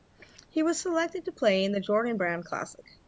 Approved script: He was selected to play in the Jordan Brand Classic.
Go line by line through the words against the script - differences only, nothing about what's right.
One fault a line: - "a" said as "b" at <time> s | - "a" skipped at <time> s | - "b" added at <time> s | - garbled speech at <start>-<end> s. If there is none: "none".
none